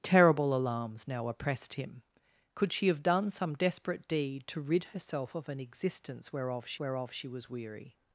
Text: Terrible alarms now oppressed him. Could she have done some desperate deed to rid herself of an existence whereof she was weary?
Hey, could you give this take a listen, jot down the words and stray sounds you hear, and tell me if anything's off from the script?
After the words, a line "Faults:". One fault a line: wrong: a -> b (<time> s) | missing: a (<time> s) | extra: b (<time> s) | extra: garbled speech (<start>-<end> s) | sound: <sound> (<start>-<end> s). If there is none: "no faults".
Terrible alarms now oppressed him. Could she have done some desperate deed to rid herself of an existence whereof she whereof she was weary?
Faults:
extra: whereof she (6.8 s)